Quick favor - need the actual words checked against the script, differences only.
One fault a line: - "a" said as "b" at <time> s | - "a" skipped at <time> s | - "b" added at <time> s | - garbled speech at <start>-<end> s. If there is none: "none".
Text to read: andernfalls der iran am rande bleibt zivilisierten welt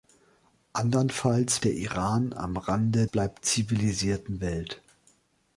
none